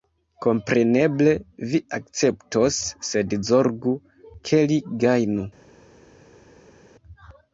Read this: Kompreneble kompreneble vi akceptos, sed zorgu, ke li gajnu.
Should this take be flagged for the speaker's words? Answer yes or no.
yes